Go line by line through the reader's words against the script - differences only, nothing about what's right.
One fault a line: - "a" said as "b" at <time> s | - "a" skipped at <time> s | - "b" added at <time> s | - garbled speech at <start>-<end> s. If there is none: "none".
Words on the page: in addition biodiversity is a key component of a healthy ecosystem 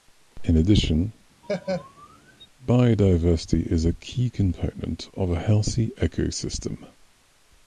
none